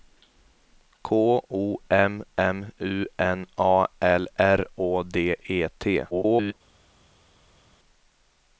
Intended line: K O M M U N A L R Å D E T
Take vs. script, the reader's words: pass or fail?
fail